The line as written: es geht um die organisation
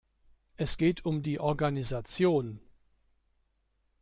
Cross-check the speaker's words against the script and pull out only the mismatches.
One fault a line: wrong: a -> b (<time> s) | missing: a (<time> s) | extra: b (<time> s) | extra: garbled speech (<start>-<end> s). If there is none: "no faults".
no faults